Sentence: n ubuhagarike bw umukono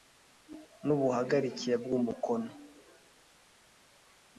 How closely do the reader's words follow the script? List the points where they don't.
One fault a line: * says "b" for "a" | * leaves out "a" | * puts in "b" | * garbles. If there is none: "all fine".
all fine